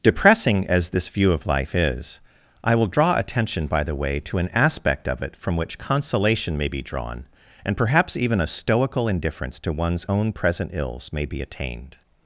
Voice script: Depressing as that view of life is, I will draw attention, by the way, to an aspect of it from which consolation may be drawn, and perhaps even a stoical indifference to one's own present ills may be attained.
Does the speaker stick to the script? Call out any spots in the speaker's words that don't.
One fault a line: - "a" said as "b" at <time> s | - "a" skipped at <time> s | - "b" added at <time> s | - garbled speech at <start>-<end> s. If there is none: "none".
- "that" said as "this" at 0.9 s